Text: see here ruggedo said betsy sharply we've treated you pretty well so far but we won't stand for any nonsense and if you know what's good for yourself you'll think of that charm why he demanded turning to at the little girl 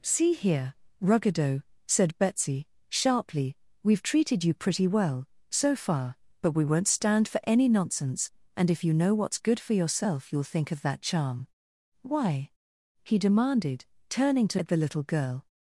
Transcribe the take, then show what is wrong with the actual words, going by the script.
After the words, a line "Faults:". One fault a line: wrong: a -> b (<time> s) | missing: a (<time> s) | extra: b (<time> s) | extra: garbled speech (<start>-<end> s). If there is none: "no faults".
see here ruggedo said betsy sharply we've treated you pretty well so far but we won't stand for any nonsense and if you know what's good for yourself you'll think of that charm why he demanded turning to at the little girl
Faults:
no faults